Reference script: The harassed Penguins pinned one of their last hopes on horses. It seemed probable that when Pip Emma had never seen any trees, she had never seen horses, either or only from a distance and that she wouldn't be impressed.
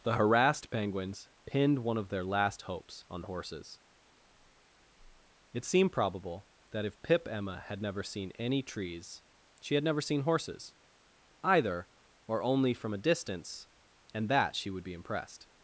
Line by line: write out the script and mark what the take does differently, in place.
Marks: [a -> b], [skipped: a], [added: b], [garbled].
The harassed Penguins pinned one of their last hopes on horses. It seemed probable that [when -> if] Pip Emma had never seen any trees, she had never seen horses, either or only from a distance and that she [wouldn't -> would] be impressed.